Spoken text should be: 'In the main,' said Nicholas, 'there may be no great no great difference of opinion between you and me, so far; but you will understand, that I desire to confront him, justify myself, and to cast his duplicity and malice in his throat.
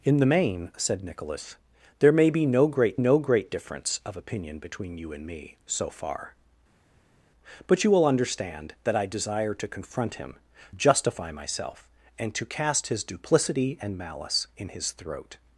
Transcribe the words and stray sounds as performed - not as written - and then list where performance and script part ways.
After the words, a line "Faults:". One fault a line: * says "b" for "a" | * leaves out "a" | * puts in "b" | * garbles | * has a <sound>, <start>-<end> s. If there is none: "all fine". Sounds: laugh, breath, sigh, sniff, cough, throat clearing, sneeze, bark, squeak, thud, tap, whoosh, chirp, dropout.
'In the main,' said Nicholas, 'there may be no great no great difference of opinion between you and me, so far; but you will understand, that I desire to confront him, justify myself, and to cast his duplicity and malice in his throat.
Faults:
all fine